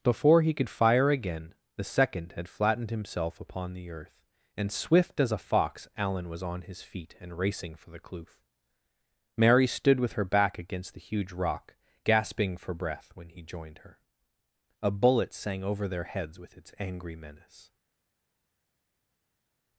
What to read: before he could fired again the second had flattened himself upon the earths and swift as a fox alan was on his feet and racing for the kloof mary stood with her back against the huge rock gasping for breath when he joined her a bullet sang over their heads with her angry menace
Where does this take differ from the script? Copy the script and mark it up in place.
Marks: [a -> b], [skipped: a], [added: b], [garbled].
before he could [fired -> fire] again the second had flattened himself upon the [earths -> earth] and swift as a fox alan was on his feet and racing for the kloof mary stood with her back against the huge rock gasping for breath when he joined her a bullet sang over their heads with [her -> its] angry menace